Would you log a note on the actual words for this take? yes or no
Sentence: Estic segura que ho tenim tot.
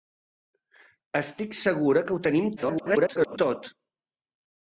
yes